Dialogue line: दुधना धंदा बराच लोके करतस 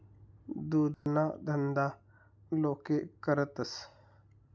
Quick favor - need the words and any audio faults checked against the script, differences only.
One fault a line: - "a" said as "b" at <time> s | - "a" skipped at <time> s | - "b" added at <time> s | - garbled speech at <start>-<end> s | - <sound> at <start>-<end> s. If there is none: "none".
- dropout at 0.9-1.1 s
- "बराच" skipped at 1.9 s